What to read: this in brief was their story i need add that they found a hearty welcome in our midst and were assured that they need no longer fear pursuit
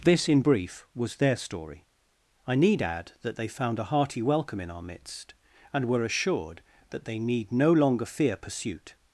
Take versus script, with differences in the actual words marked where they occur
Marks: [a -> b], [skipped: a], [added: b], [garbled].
this in brief was their story i need add that they found a hearty welcome in our midst and were assured that they need no longer fear pursuit